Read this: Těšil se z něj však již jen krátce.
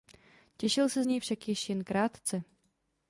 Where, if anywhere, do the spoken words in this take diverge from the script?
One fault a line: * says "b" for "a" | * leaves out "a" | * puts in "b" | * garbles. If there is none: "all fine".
all fine